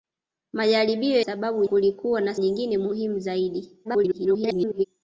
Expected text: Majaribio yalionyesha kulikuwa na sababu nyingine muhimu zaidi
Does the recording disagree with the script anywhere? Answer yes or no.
yes